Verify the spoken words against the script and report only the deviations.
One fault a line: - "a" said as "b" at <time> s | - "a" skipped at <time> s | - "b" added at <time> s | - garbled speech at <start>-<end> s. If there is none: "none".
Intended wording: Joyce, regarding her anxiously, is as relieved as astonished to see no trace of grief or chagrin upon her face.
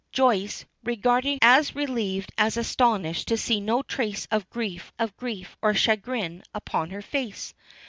- "her anxiously is" skipped at 1.4 s
- "of grief" added at 5.0 s